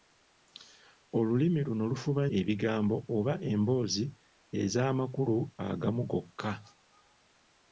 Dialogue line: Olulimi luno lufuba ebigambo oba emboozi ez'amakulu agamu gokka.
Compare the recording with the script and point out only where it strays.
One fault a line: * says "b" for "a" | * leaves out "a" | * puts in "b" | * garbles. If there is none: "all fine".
all fine